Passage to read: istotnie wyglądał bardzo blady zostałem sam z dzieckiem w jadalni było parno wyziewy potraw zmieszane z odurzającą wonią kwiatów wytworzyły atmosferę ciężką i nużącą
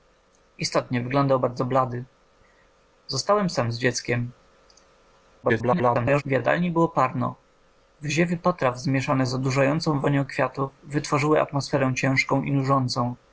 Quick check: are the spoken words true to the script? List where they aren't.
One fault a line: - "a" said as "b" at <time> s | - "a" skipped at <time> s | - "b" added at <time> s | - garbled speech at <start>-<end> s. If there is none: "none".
- garbled speech at 5.4-6.2 s